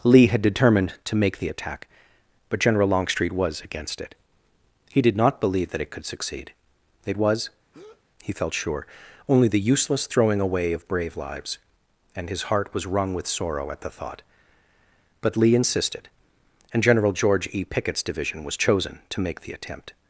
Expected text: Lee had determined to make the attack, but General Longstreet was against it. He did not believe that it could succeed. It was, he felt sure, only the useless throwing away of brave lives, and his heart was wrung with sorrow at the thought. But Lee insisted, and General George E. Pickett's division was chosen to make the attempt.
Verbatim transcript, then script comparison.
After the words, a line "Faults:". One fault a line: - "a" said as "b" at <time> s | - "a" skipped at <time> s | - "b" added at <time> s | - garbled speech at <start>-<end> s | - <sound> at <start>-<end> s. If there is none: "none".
Lee had determined to make the attack, but General Longstreet was against it. He did not believe that it could succeed. It was, he felt sure, only the useless throwing away of brave lives, and his heart was wrung with sorrow at the thought. But Lee insisted, and General George E. Pickett's division was chosen to make the attempt.
Faults:
- breath at 7.7-8.0 s